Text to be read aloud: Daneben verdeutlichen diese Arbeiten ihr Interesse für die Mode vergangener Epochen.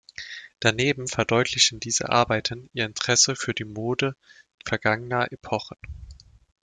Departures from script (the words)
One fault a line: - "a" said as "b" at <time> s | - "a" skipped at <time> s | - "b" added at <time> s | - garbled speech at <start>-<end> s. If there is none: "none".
none